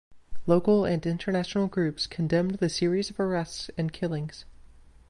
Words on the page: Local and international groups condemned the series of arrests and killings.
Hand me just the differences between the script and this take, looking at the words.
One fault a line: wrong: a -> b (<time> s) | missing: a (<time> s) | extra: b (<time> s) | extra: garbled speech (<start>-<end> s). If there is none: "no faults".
no faults